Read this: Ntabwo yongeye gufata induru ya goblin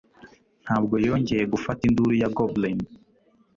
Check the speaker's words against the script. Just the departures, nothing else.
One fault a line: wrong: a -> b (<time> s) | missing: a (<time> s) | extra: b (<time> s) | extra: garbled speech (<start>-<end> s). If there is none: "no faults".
no faults